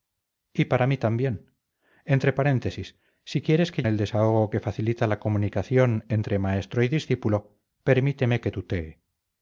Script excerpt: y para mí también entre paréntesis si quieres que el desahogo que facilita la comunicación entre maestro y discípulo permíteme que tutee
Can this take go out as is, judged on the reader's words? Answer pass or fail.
pass